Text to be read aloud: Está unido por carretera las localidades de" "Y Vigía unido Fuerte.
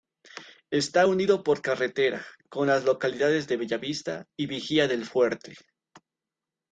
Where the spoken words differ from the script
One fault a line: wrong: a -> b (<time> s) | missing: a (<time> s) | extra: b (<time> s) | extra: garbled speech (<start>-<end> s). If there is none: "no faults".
extra: con (2.5 s)
extra: Bellavista (3.6 s)
wrong: unido -> del (4.9 s)